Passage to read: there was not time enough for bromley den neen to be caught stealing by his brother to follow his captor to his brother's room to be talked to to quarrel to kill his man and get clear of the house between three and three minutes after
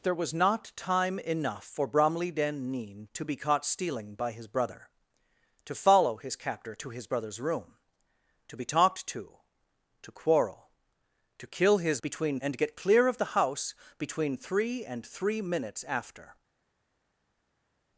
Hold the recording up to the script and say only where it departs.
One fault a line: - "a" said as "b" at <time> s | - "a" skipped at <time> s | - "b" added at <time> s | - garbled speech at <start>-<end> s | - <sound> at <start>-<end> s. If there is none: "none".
- "man" said as "between" at 12.0 s